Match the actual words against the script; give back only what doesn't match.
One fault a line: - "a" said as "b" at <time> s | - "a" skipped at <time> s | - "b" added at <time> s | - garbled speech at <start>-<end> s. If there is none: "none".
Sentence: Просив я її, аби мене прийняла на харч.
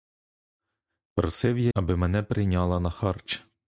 - "її" skipped at 1.7 s